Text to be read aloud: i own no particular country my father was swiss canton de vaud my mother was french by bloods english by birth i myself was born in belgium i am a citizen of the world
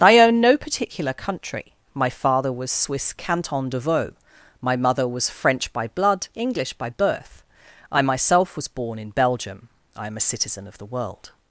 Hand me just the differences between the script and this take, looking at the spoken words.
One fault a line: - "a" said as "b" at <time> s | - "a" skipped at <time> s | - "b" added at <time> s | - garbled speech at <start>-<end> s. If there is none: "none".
- "bloods" said as "blood" at 5.9 s